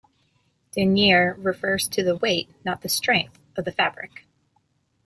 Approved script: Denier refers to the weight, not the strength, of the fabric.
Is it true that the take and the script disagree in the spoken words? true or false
false